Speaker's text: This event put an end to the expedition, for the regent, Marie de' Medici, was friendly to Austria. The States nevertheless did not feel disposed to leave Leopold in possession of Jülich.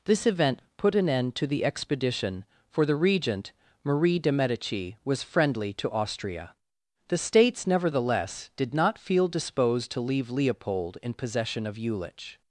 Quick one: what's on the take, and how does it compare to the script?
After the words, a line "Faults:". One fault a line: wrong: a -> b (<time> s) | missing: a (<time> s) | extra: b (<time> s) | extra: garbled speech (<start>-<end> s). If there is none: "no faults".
This event put an end to the expedition, for the regent, Marie de' Medici, was friendly to Austria. The States nevertheless did not feel disposed to leave Leopold in possession of Jülich.
Faults:
no faults